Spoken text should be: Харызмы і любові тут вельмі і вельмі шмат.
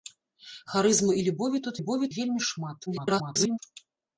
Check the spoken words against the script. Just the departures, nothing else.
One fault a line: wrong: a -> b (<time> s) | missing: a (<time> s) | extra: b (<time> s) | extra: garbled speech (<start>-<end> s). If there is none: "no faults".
wrong: вельмі -> любові (1.8 s)
extra: garbled speech (2.9-3.6 s)